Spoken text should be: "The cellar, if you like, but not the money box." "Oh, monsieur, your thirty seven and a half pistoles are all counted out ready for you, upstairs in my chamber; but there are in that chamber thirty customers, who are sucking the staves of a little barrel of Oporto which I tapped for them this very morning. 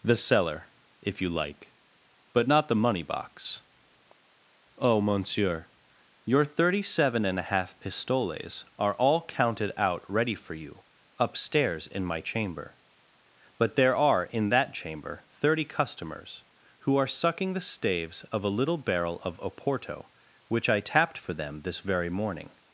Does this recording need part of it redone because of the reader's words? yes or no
no